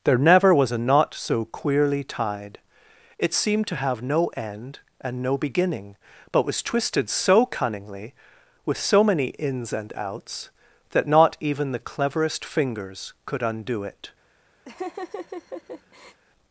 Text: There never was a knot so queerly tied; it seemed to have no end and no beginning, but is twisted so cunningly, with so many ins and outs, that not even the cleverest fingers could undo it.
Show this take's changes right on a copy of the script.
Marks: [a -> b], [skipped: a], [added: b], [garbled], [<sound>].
There never was a knot so queerly tied; it seemed to have no end and no beginning, but [is -> was] twisted so cunningly, with so many ins and outs, that not even the cleverest fingers could undo it. [laugh]